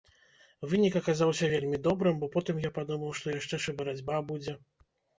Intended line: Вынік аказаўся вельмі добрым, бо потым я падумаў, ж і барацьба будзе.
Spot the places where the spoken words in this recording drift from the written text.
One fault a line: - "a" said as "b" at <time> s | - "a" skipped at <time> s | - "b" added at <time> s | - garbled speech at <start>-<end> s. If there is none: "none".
- "што яшчэ" added at 3.2 s